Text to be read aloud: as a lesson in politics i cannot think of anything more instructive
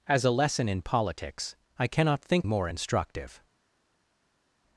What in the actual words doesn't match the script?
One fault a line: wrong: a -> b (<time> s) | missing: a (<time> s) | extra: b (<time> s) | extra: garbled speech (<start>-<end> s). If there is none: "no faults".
missing: of anything (2.5 s)